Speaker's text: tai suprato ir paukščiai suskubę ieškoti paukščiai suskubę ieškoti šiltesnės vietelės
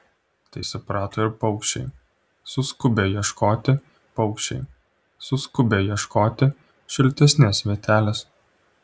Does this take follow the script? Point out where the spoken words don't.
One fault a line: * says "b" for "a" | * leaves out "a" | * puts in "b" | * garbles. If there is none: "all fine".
all fine